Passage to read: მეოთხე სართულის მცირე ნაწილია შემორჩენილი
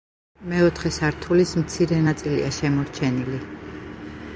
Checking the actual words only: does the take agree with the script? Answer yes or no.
yes